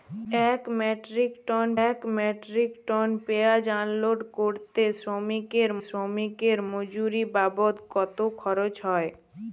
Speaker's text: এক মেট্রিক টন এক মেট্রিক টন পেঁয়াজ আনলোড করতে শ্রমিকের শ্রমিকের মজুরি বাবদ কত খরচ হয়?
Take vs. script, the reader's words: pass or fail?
pass